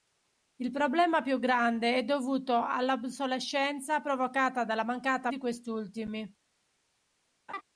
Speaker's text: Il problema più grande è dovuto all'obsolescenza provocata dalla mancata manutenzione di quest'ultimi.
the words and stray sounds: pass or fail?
fail